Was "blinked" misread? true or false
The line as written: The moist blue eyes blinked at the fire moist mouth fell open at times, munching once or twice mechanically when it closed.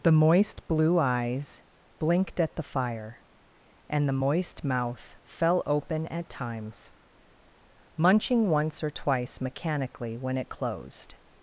false